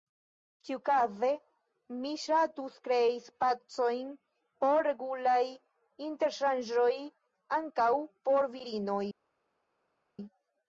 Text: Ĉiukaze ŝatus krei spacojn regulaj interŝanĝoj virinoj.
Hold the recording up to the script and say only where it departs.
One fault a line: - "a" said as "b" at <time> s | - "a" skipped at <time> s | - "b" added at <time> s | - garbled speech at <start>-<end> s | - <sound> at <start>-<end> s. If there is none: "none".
- "mi" added at 2.0 s
- "por" added at 4.7 s
- "ankaŭ por" added at 7.6 s